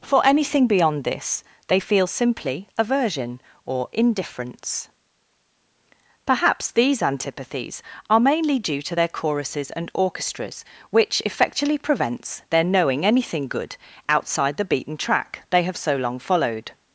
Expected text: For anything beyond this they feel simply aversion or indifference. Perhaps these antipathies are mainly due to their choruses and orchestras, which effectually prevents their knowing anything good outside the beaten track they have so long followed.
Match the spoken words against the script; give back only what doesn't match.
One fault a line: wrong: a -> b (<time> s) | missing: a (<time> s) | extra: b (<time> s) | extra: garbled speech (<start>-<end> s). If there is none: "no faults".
no faults